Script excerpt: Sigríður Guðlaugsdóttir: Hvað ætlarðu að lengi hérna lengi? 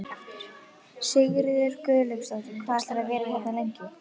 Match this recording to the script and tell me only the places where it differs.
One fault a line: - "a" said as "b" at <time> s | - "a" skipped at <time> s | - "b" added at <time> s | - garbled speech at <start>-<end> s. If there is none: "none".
- "lengi" said as "vera" at 3.1 s